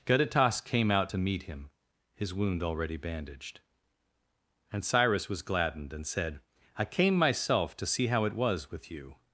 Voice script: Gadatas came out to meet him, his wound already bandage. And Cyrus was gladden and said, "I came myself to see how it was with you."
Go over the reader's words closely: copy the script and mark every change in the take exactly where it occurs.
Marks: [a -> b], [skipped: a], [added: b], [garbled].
Gadatas came out to meet him, his wound already [bandage. -> bandaged] And Cyrus was [gladden -> gladdened] and said, "I came myself to see how it was with you."